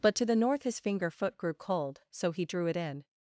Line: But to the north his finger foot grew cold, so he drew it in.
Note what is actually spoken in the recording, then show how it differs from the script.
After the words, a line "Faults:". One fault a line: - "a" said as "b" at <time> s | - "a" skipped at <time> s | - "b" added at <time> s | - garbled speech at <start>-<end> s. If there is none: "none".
But to the north his finger foot grew cold, so he drew it in.
Faults:
none